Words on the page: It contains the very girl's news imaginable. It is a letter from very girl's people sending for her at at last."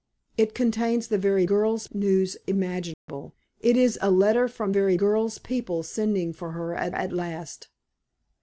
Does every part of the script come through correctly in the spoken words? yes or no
yes